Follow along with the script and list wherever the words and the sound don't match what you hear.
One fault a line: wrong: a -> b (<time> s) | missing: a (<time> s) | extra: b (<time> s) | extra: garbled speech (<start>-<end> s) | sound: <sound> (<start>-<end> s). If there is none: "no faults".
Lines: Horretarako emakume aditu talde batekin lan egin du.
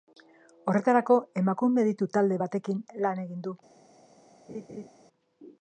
sound: laugh (4.5-4.9 s)